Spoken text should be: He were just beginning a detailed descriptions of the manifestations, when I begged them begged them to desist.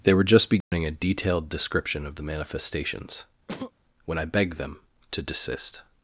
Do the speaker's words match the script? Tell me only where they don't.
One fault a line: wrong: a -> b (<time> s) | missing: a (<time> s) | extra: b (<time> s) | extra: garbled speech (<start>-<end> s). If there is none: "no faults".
wrong: He -> They (0.0 s)
wrong: descriptions -> description (1.5 s)
missing: begged them (4.8 s)